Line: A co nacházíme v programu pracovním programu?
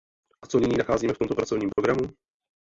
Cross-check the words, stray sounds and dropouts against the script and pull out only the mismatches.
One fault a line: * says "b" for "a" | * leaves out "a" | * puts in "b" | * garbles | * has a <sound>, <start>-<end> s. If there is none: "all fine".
* puts in "nyní"
* says "tomto" for "programu"
* has a dropout, 1.7-1.8 s